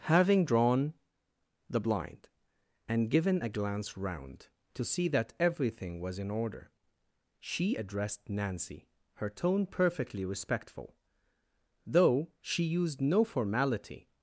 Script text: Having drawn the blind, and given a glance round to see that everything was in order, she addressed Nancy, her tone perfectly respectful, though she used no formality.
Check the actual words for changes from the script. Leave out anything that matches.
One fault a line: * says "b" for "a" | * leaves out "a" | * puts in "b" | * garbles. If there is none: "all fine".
all fine